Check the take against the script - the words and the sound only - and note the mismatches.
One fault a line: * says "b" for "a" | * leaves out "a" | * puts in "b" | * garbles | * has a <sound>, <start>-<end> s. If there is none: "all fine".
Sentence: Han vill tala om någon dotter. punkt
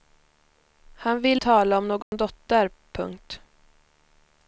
* has a dropout, 2.0-2.1 s